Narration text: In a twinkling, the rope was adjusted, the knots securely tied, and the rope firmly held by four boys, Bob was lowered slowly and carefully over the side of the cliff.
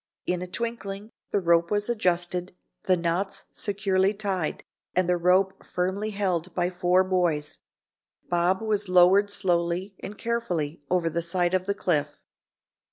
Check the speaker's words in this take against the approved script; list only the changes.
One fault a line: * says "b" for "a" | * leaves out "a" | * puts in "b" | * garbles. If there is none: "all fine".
all fine